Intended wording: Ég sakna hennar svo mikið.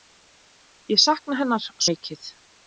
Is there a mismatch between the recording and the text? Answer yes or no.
yes